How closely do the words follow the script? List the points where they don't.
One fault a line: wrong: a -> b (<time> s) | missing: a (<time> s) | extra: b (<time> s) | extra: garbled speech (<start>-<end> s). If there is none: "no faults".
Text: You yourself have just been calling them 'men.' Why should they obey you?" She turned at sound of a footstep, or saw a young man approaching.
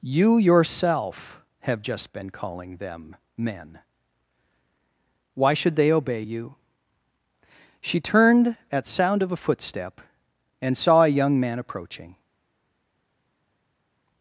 wrong: or -> and (10.6 s)